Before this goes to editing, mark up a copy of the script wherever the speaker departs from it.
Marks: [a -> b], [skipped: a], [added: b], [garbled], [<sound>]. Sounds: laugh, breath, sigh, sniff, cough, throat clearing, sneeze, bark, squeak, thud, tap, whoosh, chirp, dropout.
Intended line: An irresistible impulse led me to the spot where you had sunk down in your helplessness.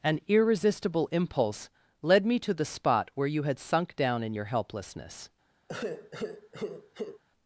An irresistible impulse led me to the spot where you had sunk down in your helplessness. [sigh]